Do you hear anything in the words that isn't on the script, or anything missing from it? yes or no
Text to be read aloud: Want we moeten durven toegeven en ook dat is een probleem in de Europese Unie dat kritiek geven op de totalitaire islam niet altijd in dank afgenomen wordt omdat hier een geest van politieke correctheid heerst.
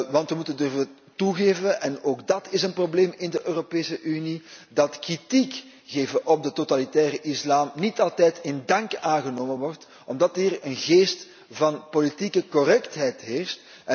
no